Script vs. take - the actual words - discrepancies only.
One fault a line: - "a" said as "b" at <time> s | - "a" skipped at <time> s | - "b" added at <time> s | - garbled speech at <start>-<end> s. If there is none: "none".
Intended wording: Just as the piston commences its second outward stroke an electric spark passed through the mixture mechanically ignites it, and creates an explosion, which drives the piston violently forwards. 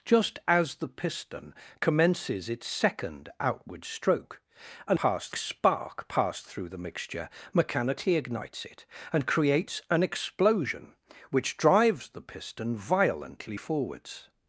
- "electric" said as "passed" at 4.9 s